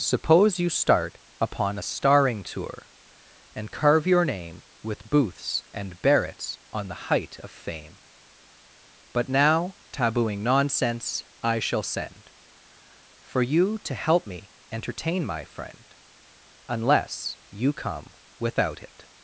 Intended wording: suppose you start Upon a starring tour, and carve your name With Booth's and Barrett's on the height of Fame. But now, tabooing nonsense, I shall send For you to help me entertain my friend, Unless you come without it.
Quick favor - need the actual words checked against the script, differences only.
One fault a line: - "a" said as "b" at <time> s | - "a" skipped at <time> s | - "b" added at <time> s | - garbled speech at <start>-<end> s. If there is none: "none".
none